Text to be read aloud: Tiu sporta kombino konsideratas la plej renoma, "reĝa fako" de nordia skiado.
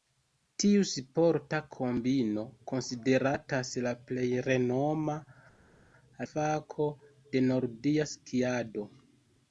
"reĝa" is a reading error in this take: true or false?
true